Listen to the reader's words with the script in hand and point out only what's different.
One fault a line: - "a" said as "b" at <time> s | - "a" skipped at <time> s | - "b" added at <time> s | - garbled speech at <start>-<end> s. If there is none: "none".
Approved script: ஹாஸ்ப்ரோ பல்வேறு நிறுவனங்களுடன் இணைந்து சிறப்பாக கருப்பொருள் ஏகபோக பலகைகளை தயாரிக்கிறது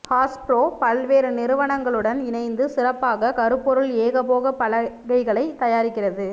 none